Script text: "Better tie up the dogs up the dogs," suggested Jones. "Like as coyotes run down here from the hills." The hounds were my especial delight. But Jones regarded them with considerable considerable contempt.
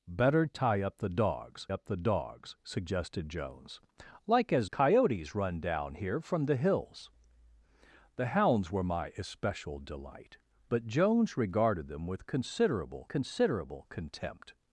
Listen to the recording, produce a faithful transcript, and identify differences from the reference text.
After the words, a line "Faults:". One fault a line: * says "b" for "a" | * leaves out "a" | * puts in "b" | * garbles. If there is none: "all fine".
"Better tie up the dogs up the dogs," suggested Jones. "Like as coyotes run down here from the hills." The hounds were my especial delight. But Jones regarded them with considerable considerable contempt.
Faults:
all fine